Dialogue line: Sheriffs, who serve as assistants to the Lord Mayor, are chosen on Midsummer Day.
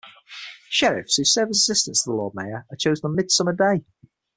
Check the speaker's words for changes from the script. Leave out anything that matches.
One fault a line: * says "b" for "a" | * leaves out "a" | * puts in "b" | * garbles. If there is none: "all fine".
all fine